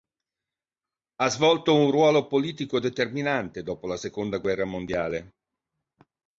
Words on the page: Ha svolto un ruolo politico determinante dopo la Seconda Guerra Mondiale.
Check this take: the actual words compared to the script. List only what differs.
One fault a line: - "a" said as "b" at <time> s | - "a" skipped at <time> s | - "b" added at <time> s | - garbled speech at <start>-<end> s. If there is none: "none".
none